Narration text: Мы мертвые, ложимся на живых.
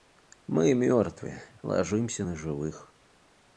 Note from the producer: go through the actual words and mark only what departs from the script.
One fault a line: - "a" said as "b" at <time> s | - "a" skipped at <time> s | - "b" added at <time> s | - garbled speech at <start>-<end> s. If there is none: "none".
none